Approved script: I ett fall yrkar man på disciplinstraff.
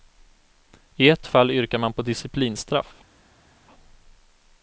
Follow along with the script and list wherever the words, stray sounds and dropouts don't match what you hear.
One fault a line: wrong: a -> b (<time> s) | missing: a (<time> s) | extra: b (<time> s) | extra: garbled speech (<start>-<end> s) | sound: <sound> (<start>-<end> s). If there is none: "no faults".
no faults